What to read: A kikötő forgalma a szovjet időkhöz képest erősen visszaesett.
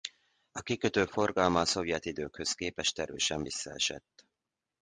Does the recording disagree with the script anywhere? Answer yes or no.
no